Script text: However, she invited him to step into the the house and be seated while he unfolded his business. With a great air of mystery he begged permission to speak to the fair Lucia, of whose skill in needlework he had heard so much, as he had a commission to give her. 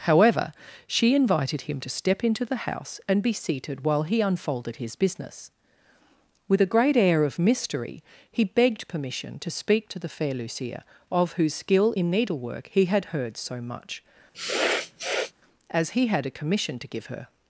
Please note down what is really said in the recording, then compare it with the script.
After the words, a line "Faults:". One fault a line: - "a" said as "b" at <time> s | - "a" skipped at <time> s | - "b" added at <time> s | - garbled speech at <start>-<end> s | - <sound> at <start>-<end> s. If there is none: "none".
However, she invited him to step into the house and be seated while he unfolded his business. With a great air of mystery he begged permission to speak to the fair Lucia, of whose skill in needlework he had heard so much, as he had a commission to give her.
Faults:
- "the" skipped at 2.6 s
- sniff at 14.3-15.3 s